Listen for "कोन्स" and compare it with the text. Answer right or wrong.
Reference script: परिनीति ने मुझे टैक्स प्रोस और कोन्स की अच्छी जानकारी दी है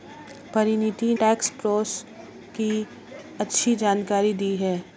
wrong